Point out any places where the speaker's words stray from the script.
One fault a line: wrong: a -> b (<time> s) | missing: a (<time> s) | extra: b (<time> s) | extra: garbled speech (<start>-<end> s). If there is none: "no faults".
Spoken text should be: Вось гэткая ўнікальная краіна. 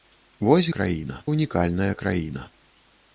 wrong: гэткая -> краіна (0.8 s)